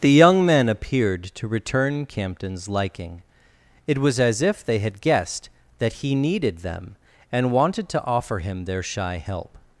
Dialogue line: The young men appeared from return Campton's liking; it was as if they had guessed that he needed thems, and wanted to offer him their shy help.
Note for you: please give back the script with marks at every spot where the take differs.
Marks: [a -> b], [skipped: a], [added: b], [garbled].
The young men appeared [from -> to] return Campton's liking; it was as if they had guessed that he needed [thems, -> them] and wanted to offer him their shy help.